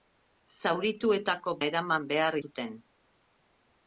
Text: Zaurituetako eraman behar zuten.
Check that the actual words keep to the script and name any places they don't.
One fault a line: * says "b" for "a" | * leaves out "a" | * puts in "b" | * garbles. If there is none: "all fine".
all fine